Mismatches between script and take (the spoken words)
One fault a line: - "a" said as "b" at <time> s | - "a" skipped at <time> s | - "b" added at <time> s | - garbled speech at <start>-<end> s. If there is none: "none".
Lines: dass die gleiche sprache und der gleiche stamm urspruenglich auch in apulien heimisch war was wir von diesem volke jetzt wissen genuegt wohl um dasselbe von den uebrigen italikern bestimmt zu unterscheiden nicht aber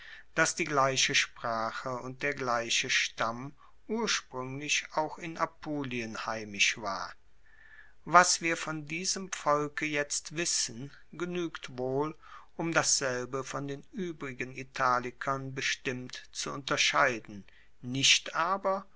none